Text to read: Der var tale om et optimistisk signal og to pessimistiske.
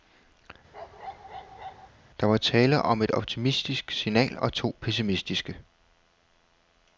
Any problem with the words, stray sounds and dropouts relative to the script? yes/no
yes